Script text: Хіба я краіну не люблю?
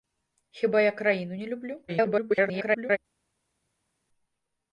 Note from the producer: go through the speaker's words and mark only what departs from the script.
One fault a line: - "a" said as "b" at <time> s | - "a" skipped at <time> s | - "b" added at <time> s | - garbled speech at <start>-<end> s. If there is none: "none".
- garbled speech at 1.9-3.0 s